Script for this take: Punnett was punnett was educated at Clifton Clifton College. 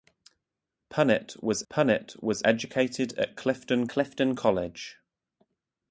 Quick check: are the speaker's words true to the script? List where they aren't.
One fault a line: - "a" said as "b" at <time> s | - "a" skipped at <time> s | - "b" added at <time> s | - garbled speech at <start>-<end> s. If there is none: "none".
none